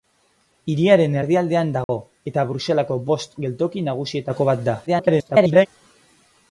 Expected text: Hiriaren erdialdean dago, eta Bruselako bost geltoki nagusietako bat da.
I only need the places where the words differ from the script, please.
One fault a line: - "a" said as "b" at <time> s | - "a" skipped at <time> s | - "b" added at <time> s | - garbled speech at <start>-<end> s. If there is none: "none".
- garbled speech at 4.9-5.7 s